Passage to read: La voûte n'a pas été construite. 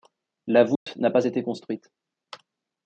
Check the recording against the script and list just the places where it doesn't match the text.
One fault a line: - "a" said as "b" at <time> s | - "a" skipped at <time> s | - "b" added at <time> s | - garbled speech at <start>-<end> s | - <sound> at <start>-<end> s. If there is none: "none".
- dropout at 0.8-0.9 s